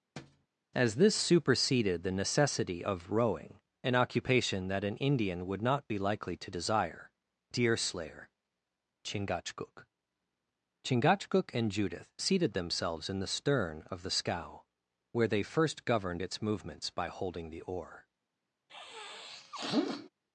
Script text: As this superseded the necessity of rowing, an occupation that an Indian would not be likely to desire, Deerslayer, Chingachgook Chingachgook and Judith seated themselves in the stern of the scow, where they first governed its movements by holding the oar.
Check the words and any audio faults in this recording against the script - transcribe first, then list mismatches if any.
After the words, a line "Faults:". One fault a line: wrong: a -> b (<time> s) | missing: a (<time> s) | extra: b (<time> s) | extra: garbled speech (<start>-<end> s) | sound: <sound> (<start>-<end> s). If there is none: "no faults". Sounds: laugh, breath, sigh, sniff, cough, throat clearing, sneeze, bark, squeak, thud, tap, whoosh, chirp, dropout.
As this superseded the necessity of rowing, an occupation that an Indian would not be likely to desire, Deerslayer, Chingachgook Chingachgook and Judith seated themselves in the stern of the scow, where they first governed its movements by holding the oar.
Faults:
sound: thud (0.2-0.5 s)
sound: sniff (18.7-20.1 s)